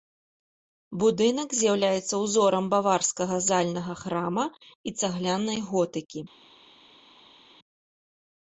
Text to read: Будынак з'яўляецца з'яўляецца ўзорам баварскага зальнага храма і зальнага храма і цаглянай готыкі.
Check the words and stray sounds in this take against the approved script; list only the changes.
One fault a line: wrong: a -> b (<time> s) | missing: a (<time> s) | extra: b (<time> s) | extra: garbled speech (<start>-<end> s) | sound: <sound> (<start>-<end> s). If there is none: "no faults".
missing: з'яўляецца (2.1 s)
missing: зальнага храма і (5.0 s)